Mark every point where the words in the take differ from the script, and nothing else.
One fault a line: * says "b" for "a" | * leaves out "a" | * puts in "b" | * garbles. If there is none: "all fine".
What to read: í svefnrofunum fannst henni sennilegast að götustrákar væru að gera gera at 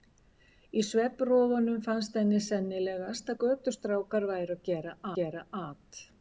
all fine